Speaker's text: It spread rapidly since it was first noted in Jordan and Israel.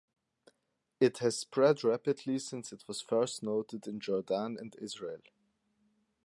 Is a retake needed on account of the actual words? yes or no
yes